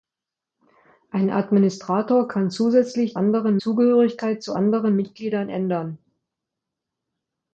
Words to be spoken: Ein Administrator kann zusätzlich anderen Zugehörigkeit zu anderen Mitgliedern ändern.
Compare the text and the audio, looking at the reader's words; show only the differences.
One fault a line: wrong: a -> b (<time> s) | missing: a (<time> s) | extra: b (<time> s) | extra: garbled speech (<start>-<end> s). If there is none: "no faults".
no faults